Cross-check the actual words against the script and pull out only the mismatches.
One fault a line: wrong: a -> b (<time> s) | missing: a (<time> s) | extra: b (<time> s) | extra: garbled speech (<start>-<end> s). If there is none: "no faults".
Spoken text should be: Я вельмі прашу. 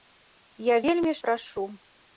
no faults